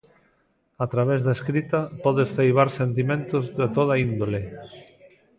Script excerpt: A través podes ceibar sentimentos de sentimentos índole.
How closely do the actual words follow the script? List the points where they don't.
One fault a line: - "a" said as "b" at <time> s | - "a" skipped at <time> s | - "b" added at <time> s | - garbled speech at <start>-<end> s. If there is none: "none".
- "da escrita" added at 1.2 s
- "sentimentos" said as "toda" at 3.8 s